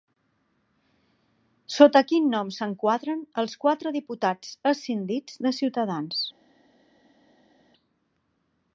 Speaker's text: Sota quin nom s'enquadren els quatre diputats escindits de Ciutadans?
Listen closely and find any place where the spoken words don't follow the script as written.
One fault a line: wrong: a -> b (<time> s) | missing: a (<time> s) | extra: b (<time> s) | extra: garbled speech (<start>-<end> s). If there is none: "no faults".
no faults